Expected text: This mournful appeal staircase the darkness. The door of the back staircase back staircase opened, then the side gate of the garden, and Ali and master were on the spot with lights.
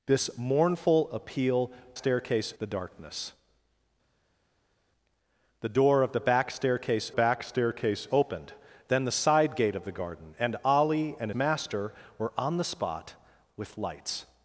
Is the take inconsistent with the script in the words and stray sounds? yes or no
no